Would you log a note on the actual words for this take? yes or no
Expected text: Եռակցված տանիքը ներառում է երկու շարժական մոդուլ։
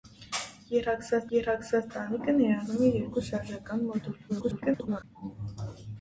yes